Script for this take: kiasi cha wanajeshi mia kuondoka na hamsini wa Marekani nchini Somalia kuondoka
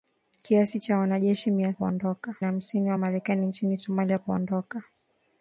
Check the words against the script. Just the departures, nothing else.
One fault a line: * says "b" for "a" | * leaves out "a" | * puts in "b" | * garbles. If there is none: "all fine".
all fine